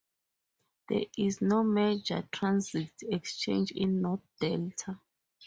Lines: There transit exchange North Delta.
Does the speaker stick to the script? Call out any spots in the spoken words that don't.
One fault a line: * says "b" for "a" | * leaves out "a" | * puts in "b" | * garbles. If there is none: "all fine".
* puts in "is no major"
* puts in "in"